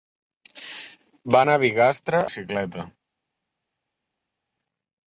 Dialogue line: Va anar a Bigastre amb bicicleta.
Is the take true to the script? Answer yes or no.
no